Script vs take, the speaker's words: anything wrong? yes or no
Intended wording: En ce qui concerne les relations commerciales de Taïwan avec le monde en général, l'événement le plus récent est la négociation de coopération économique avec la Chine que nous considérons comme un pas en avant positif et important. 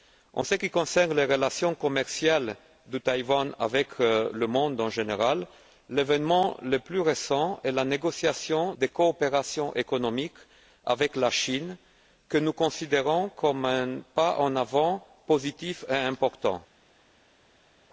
no